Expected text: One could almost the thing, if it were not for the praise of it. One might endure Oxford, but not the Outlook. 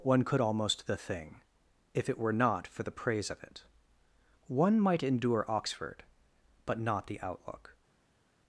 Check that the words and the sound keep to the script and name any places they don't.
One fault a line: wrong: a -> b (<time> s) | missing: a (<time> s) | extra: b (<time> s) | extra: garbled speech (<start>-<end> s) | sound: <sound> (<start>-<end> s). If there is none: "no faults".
no faults